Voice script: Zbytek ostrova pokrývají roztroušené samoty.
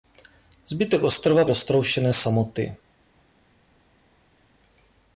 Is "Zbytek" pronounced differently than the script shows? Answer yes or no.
no